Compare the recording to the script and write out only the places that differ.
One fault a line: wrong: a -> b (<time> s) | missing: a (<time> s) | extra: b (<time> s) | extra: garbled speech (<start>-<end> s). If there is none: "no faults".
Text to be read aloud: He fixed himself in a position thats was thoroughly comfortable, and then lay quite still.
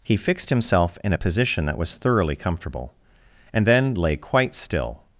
wrong: thats -> that (1.7 s)